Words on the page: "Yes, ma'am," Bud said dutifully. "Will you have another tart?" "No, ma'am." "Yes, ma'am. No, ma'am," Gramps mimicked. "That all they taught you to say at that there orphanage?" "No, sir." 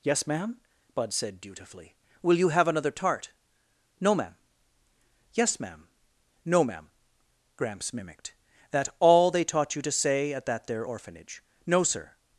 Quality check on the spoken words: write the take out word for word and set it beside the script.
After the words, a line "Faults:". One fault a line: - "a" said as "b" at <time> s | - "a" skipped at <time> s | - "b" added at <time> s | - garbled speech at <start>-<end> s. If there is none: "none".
"Yes, ma'am," Bud said dutifully. "Will you have another tart?" "No, ma'am." "Yes, ma'am. No, ma'am," Gramps mimicked. "That all they taught you to say at that there orphanage?" "No, sir."
Faults:
none